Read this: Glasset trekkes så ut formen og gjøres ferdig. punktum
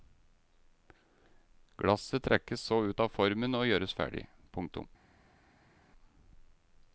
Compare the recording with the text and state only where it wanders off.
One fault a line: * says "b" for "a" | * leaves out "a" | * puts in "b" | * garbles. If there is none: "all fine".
* puts in "av"